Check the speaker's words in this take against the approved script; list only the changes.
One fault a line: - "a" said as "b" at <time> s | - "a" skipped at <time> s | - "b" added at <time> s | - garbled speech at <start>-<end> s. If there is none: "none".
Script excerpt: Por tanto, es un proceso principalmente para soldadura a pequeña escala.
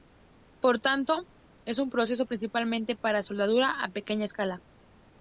none